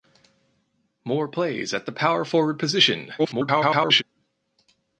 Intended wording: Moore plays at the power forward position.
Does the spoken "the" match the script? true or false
true